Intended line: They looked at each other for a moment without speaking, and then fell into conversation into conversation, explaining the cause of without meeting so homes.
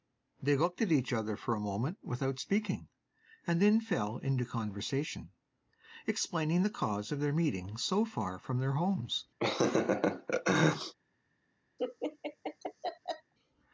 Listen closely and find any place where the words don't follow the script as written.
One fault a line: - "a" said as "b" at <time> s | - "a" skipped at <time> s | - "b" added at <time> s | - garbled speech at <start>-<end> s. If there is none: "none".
- "into conversation" skipped at 5.3 s
- "without" said as "their" at 7.2 s
- "far from their" added at 8.0 s